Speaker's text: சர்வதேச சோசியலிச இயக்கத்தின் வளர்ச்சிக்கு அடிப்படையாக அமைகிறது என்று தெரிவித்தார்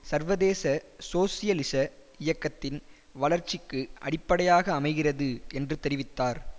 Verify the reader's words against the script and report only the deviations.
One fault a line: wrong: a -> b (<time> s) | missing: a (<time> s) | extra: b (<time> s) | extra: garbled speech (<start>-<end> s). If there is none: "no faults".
no faults